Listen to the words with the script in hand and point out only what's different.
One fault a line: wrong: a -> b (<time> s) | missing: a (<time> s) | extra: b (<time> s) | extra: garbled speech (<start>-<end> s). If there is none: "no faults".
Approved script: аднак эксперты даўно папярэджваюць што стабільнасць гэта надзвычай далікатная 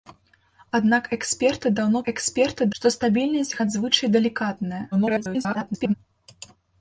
wrong: папярэджваюць -> эксперты (2.1 s)
missing: гэта (3.5 s)
extra: garbled speech (4.9-5.9 s)